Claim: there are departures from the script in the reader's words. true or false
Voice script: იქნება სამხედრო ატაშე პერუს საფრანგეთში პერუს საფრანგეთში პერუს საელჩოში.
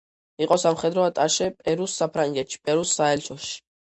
true